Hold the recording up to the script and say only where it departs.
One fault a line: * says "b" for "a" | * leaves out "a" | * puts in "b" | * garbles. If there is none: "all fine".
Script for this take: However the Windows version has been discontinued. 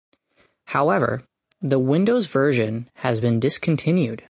all fine